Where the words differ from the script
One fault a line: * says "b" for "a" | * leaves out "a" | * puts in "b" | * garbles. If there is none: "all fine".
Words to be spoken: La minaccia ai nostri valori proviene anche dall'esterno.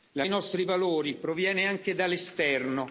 * leaves out "minaccia"